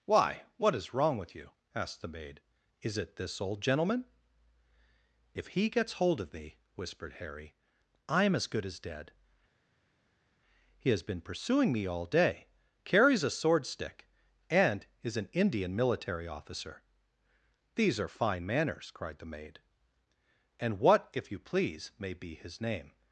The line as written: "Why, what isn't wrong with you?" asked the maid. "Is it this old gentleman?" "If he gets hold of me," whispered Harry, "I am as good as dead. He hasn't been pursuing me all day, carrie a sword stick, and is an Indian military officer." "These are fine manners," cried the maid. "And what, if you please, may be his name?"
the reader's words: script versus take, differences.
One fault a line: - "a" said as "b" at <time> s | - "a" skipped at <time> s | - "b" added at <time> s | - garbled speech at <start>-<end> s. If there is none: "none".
- "isn't" said as "is" at 0.7 s
- "hasn't" said as "has" at 10.9 s
- "carrie" said as "carries" at 12.8 s